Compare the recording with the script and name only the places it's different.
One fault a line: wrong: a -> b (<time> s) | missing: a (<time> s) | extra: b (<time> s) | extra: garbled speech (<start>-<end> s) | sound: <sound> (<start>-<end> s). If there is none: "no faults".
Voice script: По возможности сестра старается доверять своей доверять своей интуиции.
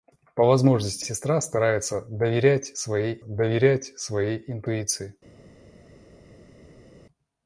no faults